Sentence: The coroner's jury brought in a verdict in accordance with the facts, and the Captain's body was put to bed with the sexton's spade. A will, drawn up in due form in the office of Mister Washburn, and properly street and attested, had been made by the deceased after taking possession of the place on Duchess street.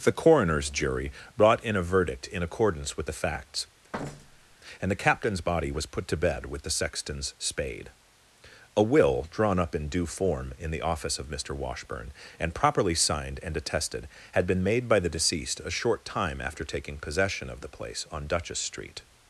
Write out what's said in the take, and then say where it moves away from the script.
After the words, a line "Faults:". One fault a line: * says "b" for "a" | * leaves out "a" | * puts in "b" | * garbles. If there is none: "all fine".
The coroner's jury brought in a verdict in accordance with the facts, and the Captain's body was put to bed with the sexton's spade. A will, drawn up in due form in the office of Mister Washburn, and properly signed and attested, had been made by the deceased a short time after taking possession of the place on Duchess street.
Faults:
* says "signed" for "street"
* puts in "a short time"